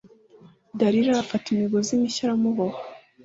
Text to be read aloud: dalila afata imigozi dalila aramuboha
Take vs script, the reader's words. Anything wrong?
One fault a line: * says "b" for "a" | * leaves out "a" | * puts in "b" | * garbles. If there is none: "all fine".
* says "mishya" for "dalila"